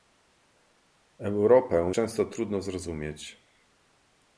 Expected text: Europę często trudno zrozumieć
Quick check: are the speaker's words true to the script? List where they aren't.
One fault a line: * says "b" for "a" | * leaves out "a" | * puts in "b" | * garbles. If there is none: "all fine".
all fine